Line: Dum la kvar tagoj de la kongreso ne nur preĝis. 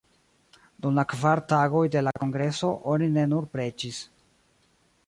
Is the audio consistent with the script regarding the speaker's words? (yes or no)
no